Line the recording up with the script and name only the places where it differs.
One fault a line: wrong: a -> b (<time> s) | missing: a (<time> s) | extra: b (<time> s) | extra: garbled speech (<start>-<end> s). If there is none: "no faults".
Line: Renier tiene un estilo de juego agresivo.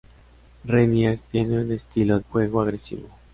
missing: de (2.2 s)